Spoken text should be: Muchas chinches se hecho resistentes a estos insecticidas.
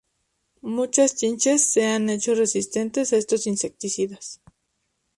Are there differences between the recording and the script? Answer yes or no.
yes